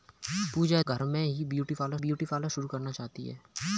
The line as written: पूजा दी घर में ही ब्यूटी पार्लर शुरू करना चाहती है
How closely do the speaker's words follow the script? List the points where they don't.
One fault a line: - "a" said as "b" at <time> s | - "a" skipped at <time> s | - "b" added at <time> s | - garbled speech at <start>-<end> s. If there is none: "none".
- "दी" skipped at 0.8 s
- "ब्यूटी पार्लर" added at 2.0 s